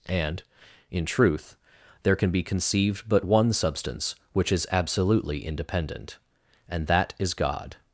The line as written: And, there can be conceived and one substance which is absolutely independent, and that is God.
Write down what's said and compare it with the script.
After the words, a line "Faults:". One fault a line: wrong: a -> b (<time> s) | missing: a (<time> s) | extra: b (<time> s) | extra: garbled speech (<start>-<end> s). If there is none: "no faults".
And, in truth, there can be conceived but one substance which is absolutely independent, and that is God.
Faults:
extra: in truth (0.9 s)
wrong: and -> but (3.1 s)